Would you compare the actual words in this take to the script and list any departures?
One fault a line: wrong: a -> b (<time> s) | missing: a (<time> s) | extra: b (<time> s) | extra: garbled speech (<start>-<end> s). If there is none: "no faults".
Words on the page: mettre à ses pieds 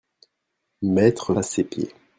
no faults